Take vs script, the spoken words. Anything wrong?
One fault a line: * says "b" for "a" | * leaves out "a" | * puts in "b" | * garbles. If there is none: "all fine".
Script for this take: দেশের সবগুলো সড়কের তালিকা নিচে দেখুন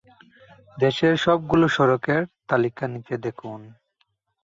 all fine